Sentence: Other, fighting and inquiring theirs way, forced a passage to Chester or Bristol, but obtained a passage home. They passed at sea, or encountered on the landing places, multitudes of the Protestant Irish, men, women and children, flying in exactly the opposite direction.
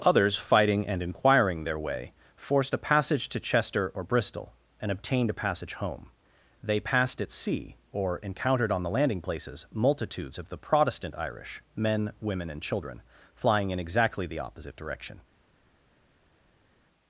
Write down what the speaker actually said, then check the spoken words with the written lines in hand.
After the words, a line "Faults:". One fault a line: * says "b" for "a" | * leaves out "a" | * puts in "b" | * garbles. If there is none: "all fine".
Others, fighting and inquiring their way, forced a passage to Chester or Bristol, and obtained a passage home. They passed at sea, or encountered on the landing places, multitudes of the Protestant Irish, men, women and children, flying in exactly the opposite direction.
Faults:
* says "Others" for "Other"
* says "their" for "theirs"
* says "and" for "but"